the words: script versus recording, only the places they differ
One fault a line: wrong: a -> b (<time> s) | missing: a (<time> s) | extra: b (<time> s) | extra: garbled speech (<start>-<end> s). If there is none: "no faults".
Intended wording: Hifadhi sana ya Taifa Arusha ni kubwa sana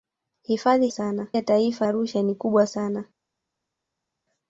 no faults